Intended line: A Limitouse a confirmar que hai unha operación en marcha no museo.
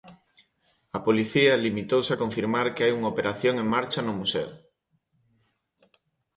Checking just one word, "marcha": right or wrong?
right